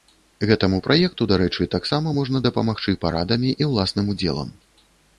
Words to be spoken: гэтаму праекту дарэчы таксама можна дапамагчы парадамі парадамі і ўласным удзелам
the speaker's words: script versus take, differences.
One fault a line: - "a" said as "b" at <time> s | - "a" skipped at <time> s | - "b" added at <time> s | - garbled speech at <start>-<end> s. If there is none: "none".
- "парадамі" skipped at 3.5 s